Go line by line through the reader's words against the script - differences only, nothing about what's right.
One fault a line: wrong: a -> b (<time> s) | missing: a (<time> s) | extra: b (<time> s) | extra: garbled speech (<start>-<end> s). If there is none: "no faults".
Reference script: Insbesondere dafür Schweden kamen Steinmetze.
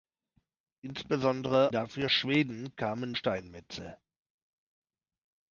no faults